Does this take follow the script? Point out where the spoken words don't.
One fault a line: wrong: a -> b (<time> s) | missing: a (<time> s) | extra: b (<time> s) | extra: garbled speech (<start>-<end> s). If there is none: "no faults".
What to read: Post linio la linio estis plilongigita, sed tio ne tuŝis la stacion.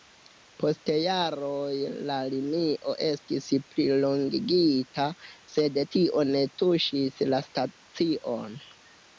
wrong: linio -> jaroj (1.0 s)